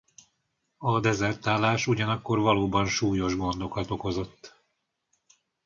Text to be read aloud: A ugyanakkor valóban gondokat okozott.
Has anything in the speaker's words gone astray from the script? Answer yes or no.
yes